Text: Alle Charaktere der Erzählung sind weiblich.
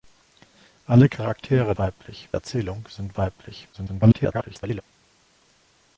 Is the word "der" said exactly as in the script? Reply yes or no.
no